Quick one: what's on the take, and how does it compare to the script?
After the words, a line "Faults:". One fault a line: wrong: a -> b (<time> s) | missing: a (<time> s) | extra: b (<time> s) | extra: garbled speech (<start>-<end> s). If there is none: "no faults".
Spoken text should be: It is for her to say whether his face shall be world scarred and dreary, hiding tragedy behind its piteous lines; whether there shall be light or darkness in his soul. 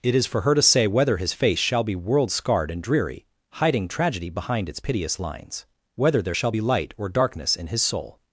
It is for her to say whether his face shall be world scarred and dreary, hiding tragedy behind its piteous lines; whether there shall be light or darkness in his soul.
Faults:
no faults